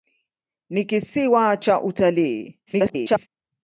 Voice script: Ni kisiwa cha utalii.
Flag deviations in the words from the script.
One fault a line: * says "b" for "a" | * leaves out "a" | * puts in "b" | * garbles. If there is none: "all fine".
* garbles